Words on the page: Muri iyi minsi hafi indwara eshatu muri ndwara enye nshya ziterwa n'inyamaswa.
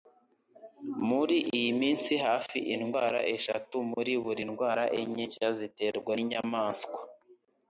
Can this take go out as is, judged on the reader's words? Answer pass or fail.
fail